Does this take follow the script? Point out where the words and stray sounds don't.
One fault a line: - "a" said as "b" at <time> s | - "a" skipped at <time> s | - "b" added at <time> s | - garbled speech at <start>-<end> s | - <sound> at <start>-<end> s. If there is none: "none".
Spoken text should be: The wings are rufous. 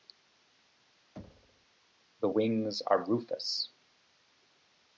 - thud at 1.2-1.7 s